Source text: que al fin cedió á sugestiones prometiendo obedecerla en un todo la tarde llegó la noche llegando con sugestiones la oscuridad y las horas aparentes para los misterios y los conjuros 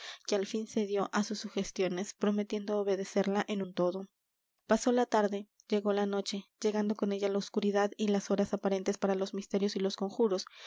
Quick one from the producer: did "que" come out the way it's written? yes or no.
yes